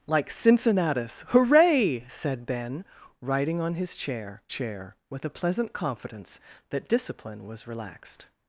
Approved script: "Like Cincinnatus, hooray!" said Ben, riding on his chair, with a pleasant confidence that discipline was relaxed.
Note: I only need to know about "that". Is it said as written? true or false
true